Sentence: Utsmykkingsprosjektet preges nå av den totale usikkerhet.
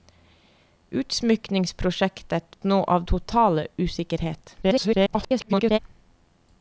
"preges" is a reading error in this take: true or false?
true